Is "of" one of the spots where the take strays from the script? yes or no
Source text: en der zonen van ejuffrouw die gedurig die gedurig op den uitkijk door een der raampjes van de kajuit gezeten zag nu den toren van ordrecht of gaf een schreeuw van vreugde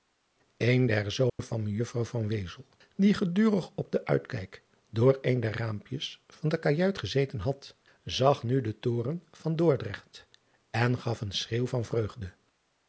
yes